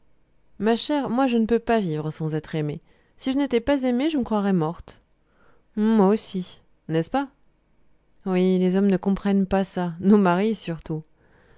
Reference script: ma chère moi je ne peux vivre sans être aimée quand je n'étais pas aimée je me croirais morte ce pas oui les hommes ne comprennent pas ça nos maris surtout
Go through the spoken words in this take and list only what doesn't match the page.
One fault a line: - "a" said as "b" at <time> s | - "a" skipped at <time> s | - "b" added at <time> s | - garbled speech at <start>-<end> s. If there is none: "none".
- "pas" added at 1.6 s
- "quand" said as "si" at 3.2 s
- "moi aussi n'est" added at 5.8 s